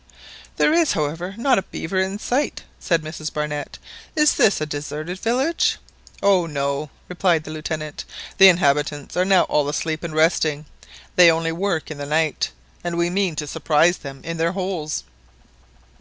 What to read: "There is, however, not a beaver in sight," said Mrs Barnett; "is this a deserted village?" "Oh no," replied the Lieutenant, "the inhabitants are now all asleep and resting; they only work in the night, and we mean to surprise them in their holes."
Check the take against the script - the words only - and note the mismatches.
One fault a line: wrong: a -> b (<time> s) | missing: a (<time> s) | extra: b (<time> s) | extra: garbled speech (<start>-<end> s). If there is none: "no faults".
no faults